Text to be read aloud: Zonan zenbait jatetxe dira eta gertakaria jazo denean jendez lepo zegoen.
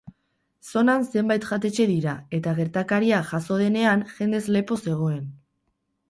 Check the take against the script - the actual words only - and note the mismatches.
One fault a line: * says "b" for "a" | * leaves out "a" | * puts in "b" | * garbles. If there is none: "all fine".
all fine